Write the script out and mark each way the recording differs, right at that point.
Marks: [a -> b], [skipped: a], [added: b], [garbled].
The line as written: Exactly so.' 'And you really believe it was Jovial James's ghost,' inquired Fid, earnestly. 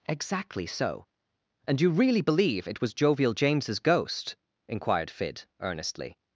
Exactly so.' 'And you really believe it was Jovial James's ghost,' inquired Fid, earnestly.